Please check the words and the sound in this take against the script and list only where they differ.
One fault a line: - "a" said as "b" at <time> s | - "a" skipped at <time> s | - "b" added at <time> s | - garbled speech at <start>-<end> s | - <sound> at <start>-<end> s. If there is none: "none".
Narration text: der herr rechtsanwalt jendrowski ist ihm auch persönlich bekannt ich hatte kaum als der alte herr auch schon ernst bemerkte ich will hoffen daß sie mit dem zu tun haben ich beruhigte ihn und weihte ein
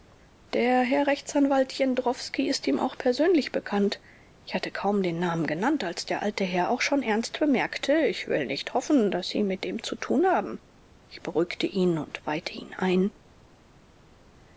- "den namen genannt" added at 5.0 s
- "nicht" added at 8.5 s
- "ihn" added at 12.5 s